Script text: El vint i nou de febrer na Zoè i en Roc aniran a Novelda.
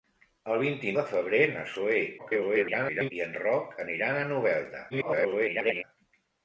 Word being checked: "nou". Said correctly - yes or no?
no